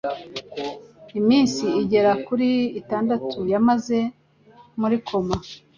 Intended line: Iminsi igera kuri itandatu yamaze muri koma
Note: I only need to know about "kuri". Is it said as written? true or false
true